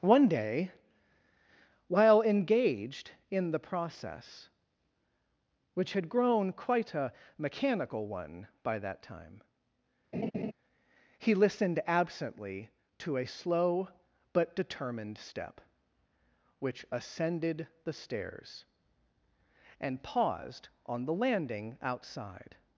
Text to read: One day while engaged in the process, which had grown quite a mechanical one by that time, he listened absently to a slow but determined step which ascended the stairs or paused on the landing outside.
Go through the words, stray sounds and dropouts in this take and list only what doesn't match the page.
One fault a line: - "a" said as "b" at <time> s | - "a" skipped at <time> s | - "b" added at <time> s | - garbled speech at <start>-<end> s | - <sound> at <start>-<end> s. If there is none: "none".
- laugh at 10.1-10.5 s
- "or" said as "and" at 19.8 s